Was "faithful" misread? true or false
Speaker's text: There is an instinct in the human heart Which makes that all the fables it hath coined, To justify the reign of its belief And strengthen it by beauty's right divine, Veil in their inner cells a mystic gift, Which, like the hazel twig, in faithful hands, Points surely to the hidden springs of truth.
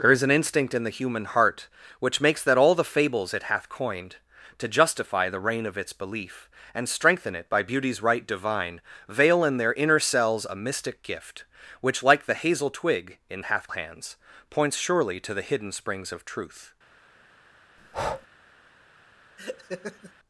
true